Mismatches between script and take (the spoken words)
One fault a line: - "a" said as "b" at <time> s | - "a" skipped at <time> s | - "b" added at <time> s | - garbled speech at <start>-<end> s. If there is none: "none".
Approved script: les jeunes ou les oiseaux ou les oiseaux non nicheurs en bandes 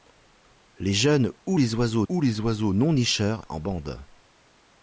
none